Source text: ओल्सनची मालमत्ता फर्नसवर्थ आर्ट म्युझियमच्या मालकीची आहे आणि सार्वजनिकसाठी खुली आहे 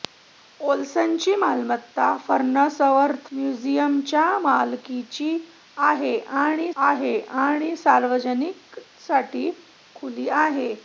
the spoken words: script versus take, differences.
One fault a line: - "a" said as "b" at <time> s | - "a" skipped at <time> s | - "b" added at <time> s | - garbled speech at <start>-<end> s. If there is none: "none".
- "आर्ट" skipped at 3.3 s
- "आहे आणि" added at 6.8 s